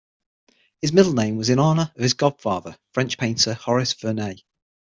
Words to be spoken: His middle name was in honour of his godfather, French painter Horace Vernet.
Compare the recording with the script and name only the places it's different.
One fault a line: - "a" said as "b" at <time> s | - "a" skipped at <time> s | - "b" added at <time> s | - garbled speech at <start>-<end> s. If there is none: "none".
none